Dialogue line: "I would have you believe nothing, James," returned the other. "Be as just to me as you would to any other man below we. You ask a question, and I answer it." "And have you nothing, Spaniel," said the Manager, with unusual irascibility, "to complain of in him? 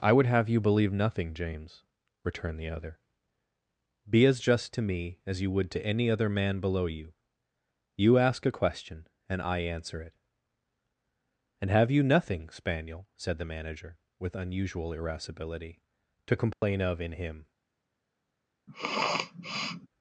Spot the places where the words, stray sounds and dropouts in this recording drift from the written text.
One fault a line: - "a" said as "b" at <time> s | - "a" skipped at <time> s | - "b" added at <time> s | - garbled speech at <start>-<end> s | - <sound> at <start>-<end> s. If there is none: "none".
- "we" said as "you" at 6.9 s
- dropout at 16.5-16.6 s
- sniff at 18.7-19.9 s